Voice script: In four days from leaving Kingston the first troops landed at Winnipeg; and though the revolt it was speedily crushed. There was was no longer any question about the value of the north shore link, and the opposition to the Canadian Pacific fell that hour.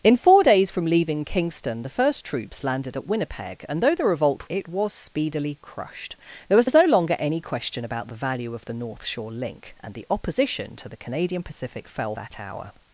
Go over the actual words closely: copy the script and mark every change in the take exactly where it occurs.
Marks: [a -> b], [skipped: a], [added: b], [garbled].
In four days from leaving Kingston the first troops landed at Winnipeg; and though the revolt it was speedily crushed. There was was no longer any question about the value of the north shore link, and the opposition to the Canadian Pacific fell that hour.